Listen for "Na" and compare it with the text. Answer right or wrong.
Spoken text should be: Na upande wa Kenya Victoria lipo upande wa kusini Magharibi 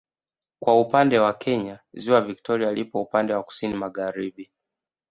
wrong